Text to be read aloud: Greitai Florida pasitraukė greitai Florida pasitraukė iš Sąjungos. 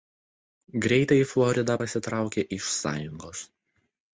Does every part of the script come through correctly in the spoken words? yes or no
no